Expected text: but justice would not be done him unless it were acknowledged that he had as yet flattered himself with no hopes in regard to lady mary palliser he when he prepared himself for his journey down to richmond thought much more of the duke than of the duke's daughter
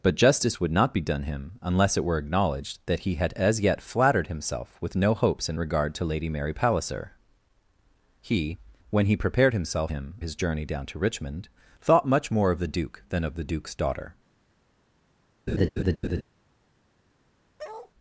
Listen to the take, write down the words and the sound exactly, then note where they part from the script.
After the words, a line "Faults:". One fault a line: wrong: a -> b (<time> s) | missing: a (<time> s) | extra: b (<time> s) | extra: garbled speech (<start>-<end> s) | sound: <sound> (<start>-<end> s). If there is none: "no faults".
but justice would not be done him unless it were acknowledged that he had as yet flattered himself with no hopes in regard to lady mary palliser he when he prepared himself him his journey down to richmond thought much more of the duke than of the duke's daughter
Faults:
wrong: for -> him (9.9 s)
sound: laugh (15.5-16.2 s)
sound: bark (17.6-17.9 s)